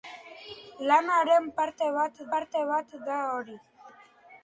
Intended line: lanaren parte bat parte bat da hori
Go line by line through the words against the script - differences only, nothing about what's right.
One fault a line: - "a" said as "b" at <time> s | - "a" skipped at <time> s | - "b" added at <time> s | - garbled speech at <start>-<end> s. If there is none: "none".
none